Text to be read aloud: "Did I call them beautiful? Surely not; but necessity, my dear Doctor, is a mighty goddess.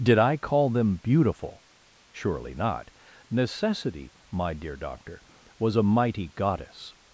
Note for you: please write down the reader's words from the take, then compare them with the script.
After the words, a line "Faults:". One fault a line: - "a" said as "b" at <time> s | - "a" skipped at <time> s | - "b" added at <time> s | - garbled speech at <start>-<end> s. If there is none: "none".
"Did I call them beautiful? Surely not; necessity, my dear Doctor, was a mighty goddess.
Faults:
- "but" skipped at 2.9 s
- "is" said as "was" at 5.6 s